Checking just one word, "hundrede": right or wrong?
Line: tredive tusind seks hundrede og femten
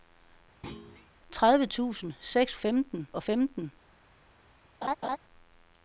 wrong